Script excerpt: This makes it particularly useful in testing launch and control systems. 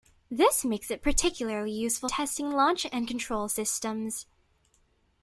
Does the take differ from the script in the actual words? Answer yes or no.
yes